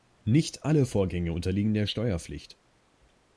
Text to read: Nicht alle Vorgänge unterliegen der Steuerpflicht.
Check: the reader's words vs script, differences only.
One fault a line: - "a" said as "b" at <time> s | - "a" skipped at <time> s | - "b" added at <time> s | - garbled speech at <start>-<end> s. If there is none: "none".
none